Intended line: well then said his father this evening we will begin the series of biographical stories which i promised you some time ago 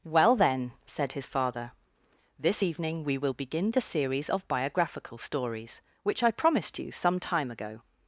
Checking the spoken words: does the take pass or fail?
pass